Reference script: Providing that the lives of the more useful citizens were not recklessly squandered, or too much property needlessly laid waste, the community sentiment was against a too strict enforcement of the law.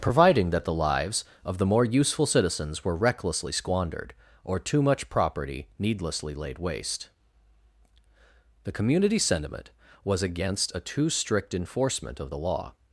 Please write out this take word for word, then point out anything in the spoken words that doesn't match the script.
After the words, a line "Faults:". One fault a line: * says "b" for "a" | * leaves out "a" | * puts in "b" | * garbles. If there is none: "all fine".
Providing that the lives of the more useful citizens were recklessly squandered, or too much property needlessly laid waste, the community sentiment was against a too strict enforcement of the law.
Faults:
* leaves out "not"